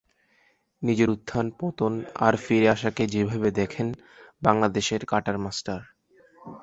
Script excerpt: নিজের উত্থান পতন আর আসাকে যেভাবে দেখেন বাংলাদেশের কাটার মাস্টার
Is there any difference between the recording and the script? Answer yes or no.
yes